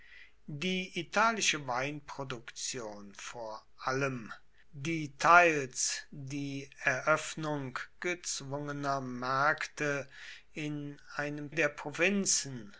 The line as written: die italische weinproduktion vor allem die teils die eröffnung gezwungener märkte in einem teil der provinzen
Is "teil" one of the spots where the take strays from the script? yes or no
yes